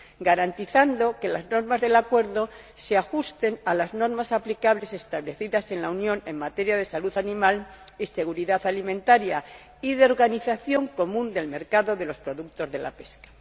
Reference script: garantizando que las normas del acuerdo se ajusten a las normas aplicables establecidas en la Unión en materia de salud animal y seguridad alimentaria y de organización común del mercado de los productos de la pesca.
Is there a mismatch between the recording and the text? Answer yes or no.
no